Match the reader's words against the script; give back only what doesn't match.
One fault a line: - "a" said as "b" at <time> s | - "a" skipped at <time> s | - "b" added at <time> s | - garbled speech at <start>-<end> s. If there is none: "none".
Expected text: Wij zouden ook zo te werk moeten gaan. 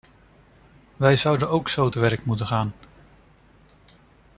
none